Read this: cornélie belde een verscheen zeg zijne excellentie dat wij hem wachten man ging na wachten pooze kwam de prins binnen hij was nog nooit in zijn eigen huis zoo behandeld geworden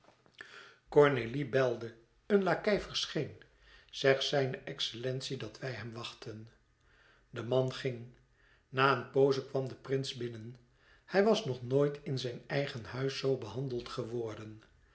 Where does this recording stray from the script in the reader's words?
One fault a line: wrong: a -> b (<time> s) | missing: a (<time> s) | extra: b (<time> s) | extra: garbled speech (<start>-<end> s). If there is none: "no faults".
extra: lakei (2.4 s)
extra: de (7.3 s)
wrong: wachten -> een (9.0 s)